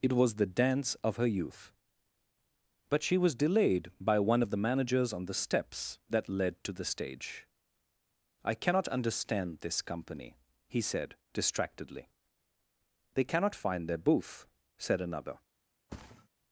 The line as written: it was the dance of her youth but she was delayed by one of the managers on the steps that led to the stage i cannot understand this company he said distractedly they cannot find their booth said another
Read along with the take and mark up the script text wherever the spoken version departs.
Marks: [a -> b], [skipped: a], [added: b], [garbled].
it was the dance of her youth but she was delayed by one of the managers on the steps that led to the stage i cannot understand this company he said distractedly they cannot find their booth said another